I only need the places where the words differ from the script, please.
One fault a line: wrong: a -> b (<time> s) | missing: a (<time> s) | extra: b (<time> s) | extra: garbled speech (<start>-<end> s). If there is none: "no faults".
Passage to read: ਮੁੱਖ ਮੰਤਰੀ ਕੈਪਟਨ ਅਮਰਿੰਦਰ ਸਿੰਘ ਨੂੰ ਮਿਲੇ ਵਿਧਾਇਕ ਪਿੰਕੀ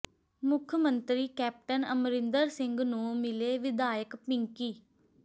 no faults